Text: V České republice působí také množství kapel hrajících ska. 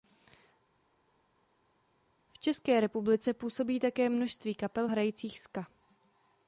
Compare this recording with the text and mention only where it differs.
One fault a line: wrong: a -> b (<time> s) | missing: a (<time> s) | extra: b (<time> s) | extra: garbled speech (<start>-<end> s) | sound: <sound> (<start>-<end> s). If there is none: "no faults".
no faults